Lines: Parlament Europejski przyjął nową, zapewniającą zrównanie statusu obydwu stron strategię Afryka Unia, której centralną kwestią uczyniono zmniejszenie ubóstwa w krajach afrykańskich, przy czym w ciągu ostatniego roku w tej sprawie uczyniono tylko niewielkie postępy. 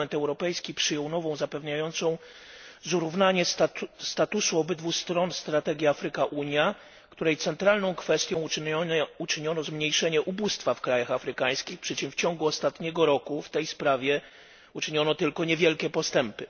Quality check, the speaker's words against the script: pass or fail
pass